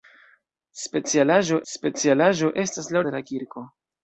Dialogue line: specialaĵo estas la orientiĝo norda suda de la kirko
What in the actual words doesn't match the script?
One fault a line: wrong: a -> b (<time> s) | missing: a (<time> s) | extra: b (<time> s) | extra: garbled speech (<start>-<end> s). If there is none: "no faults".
extra: specialaĵo (1.7 s)
missing: orientiĝo norda suda (3.0 s)